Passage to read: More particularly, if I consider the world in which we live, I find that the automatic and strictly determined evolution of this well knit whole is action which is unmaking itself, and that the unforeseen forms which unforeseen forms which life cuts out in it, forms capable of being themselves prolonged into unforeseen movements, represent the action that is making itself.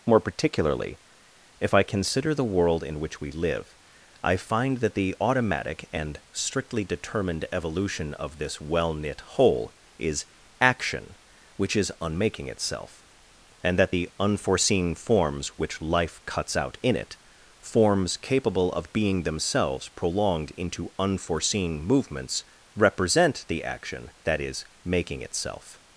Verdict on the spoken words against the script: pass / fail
fail